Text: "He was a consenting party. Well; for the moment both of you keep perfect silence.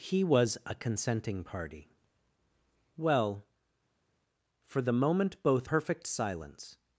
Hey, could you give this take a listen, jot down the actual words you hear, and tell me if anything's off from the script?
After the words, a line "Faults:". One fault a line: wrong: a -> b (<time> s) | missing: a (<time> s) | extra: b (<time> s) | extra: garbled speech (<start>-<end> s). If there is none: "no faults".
"He was a consenting party. Well; for the moment both perfect silence.
Faults:
missing: of you keep (5.7 s)